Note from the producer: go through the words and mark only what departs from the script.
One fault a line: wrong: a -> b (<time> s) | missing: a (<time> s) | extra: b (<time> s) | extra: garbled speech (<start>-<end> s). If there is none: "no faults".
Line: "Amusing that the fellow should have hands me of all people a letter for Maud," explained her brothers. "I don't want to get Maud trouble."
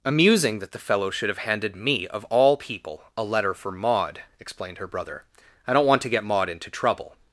wrong: hands -> handed (1.4 s)
wrong: brothers -> brother (4.9 s)
extra: into (6.5 s)